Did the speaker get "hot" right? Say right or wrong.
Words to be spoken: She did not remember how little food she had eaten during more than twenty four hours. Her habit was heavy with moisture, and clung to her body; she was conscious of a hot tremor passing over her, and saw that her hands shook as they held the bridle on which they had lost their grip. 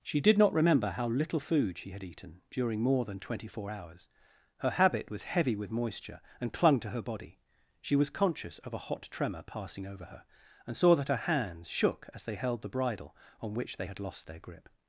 right